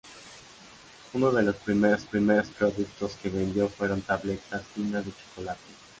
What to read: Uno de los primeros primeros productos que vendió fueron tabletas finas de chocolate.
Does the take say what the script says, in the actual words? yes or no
yes